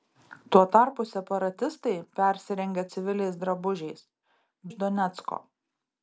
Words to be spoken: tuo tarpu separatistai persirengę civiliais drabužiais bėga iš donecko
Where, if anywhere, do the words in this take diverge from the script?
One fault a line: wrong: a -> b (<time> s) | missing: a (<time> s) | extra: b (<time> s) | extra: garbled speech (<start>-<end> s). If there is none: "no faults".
missing: bėga (4.1 s)